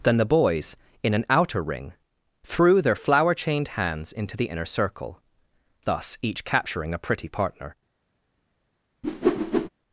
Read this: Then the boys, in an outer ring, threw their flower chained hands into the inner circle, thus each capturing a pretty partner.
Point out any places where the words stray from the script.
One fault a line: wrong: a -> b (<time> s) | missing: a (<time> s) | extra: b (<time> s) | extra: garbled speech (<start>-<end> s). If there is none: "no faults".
no faults